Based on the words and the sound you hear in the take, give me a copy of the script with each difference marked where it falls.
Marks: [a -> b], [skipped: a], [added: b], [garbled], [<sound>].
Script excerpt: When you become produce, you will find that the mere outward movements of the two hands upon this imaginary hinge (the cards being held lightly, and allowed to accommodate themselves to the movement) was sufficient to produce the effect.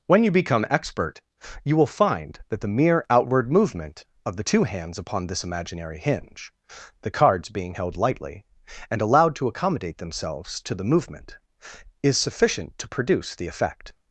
When you become [produce, -> expert] you will find that the mere outward [movements -> movement] of the two hands upon this imaginary hinge (the cards being held lightly, and allowed to accommodate themselves to the movement) [was -> is] sufficient to produce the effect.